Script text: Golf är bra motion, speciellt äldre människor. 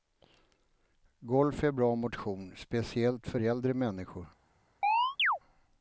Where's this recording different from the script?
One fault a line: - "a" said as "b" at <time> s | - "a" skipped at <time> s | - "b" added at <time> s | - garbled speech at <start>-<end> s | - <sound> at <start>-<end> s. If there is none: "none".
- "för" added at 3.3 s
- chirp at 4.8-5.4 s